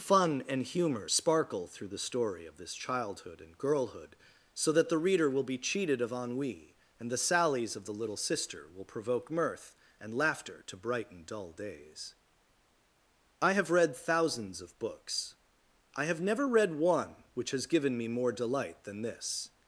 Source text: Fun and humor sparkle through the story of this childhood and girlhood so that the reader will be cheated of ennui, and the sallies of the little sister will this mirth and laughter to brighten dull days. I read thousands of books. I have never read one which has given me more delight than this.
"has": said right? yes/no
yes